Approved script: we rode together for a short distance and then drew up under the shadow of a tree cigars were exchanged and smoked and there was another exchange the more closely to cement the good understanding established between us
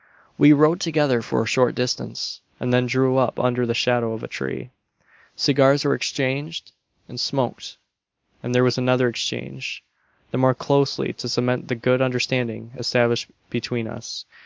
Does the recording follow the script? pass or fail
pass